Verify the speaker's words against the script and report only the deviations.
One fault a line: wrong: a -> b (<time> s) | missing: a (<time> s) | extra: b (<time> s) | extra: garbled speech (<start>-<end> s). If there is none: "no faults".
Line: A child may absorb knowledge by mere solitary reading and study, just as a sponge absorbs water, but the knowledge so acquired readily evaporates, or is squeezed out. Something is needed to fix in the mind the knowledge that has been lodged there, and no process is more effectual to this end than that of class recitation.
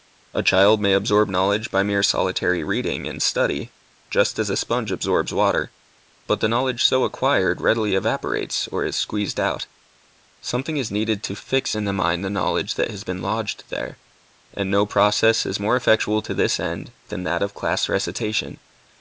no faults